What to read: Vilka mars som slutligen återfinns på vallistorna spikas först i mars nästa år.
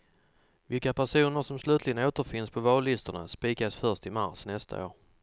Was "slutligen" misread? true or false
false